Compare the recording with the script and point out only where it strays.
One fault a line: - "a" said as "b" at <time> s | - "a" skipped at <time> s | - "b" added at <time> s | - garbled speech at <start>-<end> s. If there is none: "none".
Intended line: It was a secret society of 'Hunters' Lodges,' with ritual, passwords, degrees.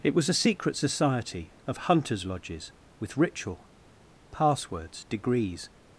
none